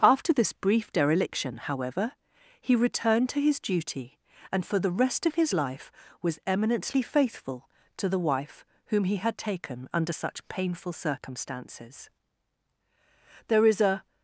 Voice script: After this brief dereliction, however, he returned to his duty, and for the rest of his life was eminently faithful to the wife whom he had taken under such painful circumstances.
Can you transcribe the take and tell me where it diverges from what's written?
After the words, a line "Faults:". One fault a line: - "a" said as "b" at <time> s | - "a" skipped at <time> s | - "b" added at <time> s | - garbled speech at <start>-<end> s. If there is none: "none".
After this brief dereliction, however, he returned to his duty, and for the rest of his life was eminently faithful to the wife whom he had taken under such painful circumstances. There is a
Faults:
- "There is a" added at 13.5 s